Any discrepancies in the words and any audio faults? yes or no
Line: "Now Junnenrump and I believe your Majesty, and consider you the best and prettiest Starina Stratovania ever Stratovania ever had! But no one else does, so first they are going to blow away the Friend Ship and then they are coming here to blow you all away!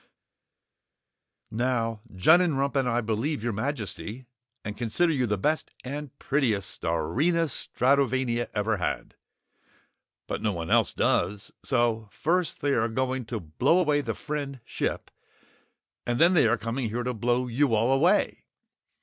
yes